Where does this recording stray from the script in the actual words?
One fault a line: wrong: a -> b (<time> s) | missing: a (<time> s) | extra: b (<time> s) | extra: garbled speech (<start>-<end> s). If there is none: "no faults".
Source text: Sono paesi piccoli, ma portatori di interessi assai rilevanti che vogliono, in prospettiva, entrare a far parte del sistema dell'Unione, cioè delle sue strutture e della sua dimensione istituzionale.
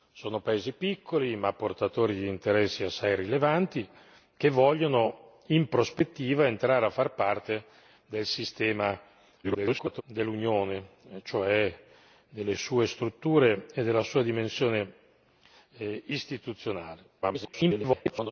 extra: garbled speech (9.4-10.0 s)
extra: garbled speech (17.2-18.3 s)